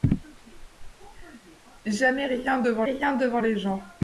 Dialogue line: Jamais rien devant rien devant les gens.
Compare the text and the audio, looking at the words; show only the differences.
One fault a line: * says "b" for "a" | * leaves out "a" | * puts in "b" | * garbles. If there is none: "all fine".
all fine